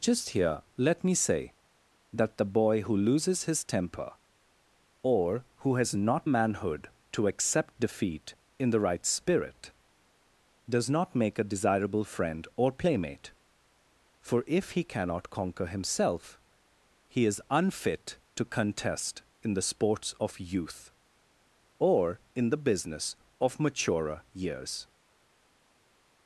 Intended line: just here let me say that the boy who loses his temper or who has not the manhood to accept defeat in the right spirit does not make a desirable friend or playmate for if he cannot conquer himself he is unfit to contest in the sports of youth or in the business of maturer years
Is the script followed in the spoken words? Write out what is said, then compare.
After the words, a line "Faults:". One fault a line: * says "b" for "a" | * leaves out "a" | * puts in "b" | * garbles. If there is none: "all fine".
just here let me say that the boy who loses his temper or who has not manhood to accept defeat in the right spirit does not make a desirable friend or playmate for if he cannot conquer himself he is unfit to contest in the sports of youth or in the business of maturer years
Faults:
* leaves out "the"